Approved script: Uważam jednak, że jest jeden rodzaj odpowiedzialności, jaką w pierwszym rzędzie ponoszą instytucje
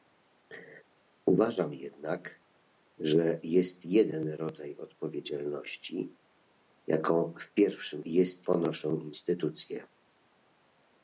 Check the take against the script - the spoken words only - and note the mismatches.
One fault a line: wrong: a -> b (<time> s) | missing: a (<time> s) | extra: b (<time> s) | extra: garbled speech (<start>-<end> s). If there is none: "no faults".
wrong: rzędzie -> jest (8.0 s)